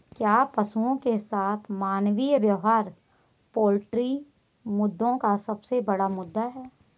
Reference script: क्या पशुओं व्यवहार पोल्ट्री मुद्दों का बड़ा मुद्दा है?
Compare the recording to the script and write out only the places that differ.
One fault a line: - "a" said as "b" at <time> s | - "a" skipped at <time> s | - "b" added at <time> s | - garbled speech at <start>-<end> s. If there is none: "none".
- "के साथ मानवीय" added at 1.0 s
- "सबसे" added at 5.4 s